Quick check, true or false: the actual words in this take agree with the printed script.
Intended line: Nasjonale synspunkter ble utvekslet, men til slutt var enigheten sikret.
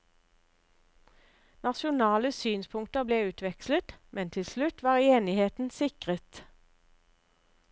true